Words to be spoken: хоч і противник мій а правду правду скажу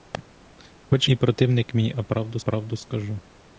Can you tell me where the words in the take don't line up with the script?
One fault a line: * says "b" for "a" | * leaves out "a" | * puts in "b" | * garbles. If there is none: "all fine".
all fine